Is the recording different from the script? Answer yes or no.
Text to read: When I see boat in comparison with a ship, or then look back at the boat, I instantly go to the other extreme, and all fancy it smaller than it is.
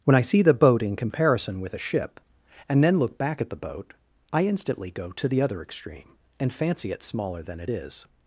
yes